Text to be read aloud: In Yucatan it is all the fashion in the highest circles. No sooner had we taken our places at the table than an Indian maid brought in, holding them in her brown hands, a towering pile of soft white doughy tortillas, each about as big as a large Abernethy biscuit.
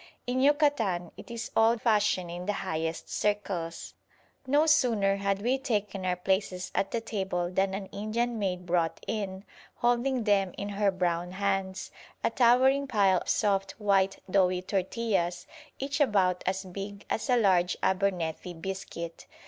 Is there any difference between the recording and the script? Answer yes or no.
yes